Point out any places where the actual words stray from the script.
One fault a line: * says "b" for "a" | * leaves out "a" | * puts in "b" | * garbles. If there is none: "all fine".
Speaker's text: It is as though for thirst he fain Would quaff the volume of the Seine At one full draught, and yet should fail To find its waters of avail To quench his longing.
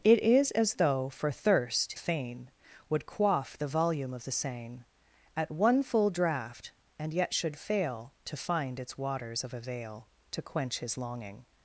* leaves out "he"